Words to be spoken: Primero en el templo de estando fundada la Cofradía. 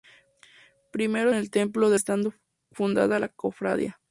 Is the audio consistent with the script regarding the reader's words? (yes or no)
yes